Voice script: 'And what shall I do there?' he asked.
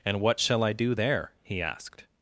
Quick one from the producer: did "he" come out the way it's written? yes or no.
yes